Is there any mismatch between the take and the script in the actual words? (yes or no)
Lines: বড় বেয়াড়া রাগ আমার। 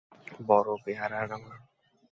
yes